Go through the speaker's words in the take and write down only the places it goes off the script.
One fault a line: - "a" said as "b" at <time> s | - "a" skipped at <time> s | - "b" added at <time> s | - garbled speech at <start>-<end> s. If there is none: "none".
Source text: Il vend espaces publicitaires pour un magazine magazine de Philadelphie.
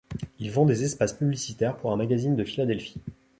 - "des" added at 0.7 s
- "magazine" skipped at 2.4 s